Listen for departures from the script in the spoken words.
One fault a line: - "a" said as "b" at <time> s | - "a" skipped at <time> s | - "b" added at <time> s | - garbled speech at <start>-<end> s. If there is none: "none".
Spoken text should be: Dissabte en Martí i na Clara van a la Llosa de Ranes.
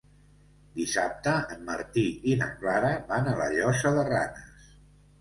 none